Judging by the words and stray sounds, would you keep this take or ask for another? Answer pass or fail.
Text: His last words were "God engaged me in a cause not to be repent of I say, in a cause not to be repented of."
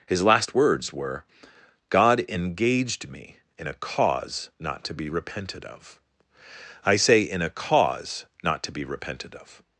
fail